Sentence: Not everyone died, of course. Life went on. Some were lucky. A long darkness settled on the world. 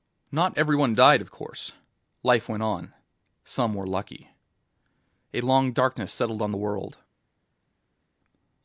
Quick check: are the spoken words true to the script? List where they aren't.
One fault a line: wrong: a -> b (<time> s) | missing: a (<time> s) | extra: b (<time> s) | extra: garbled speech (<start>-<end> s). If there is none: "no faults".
no faults